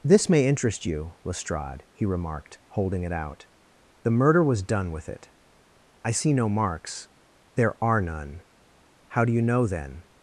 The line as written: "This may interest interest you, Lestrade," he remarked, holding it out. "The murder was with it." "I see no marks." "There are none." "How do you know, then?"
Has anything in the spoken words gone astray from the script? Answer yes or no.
yes